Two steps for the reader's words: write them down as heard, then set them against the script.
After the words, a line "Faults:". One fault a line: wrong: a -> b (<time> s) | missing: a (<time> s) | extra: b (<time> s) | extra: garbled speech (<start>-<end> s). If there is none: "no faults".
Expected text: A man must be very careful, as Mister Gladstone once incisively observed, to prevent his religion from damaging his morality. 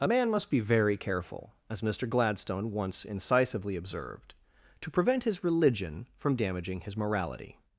A man must be very careful, as Mister Gladstone once incisively observed, to prevent his religion from damaging his morality.
Faults:
no faults